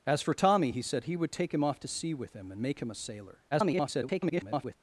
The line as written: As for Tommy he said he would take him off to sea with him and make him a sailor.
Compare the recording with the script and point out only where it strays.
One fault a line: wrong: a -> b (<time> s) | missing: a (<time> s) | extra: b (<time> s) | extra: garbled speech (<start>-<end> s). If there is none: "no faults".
extra: garbled speech (3.5-4.8 s)